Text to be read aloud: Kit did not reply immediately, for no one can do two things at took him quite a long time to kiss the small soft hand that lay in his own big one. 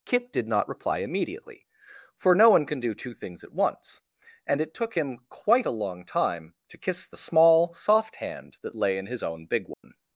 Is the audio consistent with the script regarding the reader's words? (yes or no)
no